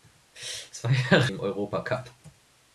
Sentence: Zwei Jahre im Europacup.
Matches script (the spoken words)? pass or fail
pass